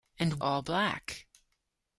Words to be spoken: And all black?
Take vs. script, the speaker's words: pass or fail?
pass